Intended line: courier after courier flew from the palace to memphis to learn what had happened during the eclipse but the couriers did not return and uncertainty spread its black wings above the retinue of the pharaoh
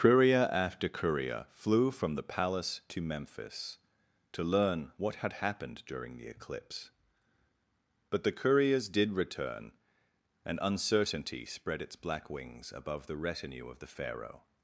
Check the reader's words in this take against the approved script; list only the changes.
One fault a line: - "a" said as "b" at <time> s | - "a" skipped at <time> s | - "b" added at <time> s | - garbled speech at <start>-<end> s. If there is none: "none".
- "not" skipped at 9.1 s